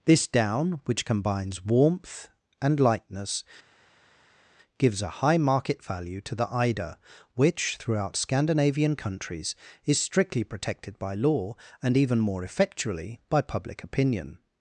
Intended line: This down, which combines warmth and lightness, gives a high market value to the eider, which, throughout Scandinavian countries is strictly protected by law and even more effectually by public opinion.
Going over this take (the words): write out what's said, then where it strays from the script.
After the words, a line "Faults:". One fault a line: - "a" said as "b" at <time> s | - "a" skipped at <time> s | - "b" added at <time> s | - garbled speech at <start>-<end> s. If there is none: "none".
This down, which combines warmth and lightness, gives a high market value to the eider, which, throughout Scandinavian countries is strictly protected by law and even more effectually by public opinion.
Faults:
none